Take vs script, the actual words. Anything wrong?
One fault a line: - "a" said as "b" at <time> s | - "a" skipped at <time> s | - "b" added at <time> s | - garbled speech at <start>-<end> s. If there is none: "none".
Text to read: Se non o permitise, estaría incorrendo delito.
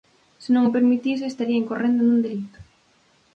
- "nun" added at 2.0 s